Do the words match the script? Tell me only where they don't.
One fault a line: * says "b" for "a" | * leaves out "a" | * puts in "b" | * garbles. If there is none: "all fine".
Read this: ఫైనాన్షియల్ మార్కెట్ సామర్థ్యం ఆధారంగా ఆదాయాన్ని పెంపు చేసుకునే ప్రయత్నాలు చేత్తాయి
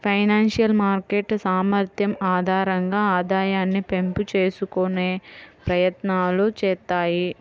all fine